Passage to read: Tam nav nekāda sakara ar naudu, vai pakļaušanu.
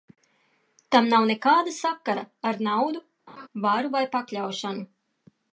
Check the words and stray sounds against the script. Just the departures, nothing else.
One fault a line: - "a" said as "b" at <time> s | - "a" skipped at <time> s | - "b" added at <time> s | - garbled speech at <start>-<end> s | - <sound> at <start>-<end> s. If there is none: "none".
- laugh at 3.3-3.5 s
- "varu" added at 3.7 s